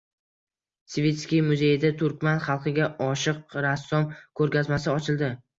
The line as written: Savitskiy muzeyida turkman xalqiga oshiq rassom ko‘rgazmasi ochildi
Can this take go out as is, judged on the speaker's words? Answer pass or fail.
pass